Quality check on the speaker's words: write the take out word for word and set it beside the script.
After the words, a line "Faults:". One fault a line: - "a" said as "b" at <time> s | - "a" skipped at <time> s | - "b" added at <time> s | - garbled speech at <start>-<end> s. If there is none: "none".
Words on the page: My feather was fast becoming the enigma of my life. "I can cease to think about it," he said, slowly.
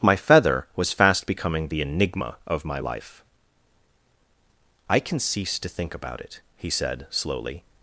My feather was fast becoming the enigma of my life. "I can cease to think about it," he said, slowly.
Faults:
none